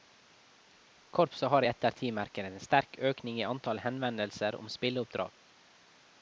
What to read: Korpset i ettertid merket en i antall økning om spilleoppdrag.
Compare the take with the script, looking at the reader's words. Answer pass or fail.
fail